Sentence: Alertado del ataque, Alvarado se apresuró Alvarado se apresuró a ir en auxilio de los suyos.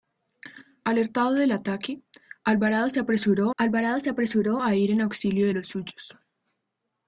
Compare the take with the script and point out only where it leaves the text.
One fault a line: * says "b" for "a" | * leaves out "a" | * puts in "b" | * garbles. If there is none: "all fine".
all fine